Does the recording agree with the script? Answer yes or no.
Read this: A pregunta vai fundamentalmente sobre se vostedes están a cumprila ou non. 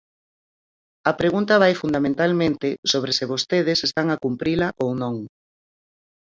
yes